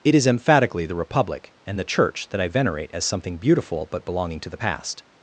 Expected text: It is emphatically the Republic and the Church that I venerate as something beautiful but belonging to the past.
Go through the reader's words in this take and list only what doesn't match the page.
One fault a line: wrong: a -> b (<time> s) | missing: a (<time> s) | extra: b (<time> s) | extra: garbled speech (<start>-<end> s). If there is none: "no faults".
no faults